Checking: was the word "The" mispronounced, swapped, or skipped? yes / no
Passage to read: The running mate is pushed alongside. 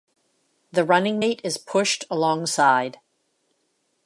no